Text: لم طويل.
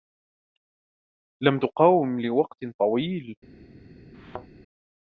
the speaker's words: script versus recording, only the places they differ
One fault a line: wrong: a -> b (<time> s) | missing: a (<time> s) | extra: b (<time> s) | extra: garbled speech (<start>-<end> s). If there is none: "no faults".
extra: تقاوم لوقت (1.6 s)